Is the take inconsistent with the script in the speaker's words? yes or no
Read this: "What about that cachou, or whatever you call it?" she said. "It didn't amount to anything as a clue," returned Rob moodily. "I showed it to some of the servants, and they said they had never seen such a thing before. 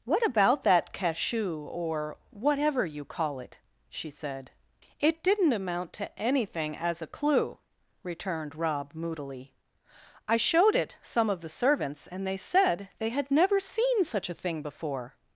yes